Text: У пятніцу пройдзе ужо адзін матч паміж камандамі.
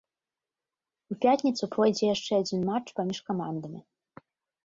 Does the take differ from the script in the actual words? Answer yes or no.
yes